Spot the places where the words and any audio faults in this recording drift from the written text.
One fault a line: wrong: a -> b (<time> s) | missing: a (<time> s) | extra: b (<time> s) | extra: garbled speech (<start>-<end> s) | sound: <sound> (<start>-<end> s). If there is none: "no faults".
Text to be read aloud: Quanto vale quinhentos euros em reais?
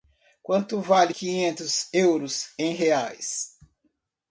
no faults